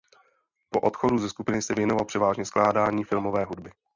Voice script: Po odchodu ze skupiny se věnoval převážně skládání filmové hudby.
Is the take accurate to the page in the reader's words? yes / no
yes